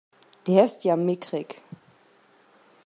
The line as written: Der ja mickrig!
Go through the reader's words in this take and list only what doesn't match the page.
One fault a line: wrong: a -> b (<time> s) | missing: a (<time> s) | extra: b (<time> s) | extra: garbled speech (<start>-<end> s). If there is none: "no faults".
extra: ist (0.7 s)